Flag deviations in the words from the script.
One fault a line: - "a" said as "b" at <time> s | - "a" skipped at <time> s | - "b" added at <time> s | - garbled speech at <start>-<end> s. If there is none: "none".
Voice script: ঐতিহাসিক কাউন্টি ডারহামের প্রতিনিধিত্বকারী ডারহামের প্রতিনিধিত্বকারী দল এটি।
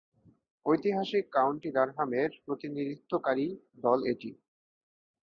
- "ডারহামের প্রতিনিধিত্বকারী" skipped at 3.5 s